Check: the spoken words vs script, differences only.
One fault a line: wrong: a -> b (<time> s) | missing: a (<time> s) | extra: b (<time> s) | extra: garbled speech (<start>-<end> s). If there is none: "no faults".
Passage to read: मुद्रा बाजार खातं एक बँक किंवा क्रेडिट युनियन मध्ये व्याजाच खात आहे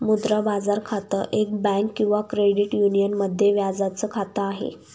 no faults